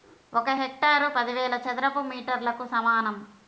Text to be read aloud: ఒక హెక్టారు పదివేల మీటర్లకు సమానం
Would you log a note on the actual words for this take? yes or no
yes